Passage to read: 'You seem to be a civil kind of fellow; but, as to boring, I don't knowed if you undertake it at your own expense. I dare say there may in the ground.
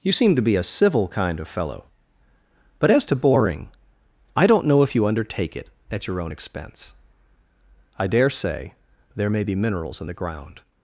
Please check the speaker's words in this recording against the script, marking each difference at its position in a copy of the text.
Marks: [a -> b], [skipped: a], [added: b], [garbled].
'You seem to be a civil kind of fellow; but, as to boring, I don't [knowed -> know] if you undertake it at your own expense. I dare say there may [added: be minerals] in the ground.